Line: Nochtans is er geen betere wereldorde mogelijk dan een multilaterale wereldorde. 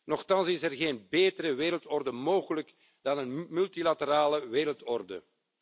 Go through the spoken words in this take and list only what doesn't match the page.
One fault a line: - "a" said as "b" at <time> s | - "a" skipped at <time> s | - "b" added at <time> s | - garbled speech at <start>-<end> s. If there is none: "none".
none